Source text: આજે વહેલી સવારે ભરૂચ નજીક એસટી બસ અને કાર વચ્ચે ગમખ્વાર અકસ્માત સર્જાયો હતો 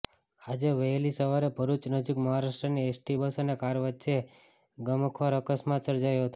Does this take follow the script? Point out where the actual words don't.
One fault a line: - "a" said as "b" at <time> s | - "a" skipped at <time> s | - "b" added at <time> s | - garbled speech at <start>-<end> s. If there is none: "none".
- "મહારાષ્ટ્રની" added at 2.2 s